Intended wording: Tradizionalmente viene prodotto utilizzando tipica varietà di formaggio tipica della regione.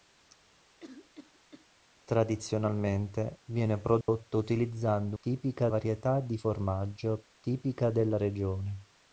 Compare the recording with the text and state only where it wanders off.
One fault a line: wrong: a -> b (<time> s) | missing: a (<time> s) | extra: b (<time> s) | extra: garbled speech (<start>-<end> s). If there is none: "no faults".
no faults